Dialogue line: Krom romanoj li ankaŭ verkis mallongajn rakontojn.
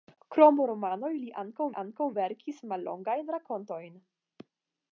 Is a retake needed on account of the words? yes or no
yes